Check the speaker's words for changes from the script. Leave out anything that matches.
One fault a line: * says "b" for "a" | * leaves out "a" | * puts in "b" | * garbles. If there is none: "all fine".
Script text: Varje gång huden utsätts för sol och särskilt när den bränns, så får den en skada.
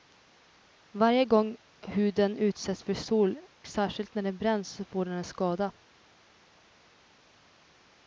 * leaves out "och"